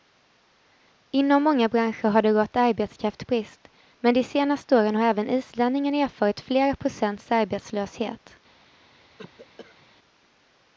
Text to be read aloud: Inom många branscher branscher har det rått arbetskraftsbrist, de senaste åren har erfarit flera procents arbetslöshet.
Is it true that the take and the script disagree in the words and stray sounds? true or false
true